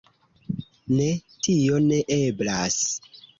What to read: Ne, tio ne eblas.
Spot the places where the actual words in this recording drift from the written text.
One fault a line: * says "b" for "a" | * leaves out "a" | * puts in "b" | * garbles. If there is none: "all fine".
all fine